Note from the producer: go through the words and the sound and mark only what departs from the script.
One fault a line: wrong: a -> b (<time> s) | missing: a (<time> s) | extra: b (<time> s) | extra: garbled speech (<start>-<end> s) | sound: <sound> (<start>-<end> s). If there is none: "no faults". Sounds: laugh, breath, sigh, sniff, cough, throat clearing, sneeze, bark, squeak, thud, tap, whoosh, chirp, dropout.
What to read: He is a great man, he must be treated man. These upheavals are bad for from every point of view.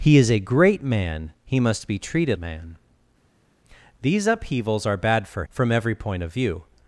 no faults